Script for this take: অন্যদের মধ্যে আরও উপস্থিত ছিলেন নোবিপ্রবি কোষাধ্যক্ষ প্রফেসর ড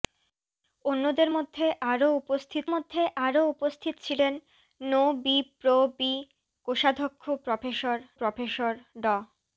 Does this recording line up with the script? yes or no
no